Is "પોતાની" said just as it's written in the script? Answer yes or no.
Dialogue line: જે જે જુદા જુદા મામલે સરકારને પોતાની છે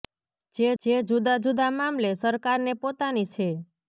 yes